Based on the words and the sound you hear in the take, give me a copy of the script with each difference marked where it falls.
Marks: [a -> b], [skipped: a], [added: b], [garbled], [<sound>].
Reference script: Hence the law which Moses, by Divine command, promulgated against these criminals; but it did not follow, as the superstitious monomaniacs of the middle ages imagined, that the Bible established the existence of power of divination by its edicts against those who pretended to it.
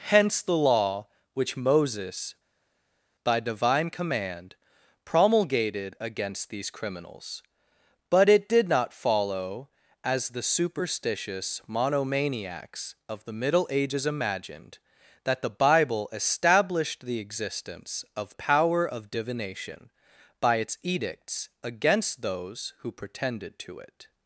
Hence the law which Moses, by Divine command, promulgated against these criminals; but it did not follow, as the superstitious monomaniacs of the middle ages imagined, that the Bible established the existence of power of divination by its edicts against those who pretended to it.